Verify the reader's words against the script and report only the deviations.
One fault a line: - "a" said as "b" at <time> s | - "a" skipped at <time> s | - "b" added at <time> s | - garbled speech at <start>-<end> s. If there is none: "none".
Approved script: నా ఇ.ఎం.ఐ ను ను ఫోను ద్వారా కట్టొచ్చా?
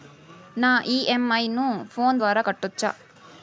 - "ను" skipped at 1.7 s